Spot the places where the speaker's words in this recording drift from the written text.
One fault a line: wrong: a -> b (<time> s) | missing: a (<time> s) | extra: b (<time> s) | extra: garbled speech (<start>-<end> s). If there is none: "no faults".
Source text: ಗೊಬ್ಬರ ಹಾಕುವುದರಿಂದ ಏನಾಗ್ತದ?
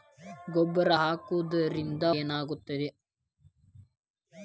no faults